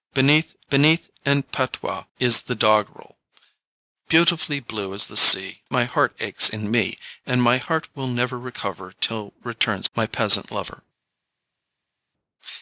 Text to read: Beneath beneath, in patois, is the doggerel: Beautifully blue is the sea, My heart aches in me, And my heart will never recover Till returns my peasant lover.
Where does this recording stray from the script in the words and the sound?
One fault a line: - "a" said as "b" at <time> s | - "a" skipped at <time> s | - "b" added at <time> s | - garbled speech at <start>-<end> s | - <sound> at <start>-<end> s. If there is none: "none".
none